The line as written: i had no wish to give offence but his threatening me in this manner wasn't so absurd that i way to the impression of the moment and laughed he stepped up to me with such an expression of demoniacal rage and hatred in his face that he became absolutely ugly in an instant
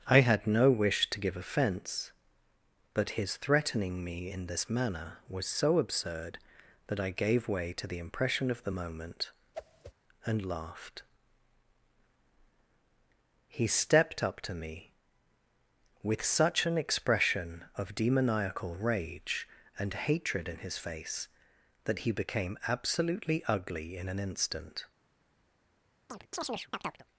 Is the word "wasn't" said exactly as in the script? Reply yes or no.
no